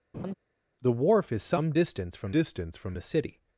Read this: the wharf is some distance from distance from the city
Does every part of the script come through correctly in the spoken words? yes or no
yes